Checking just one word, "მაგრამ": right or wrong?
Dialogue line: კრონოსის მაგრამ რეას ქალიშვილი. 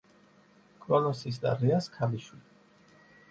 wrong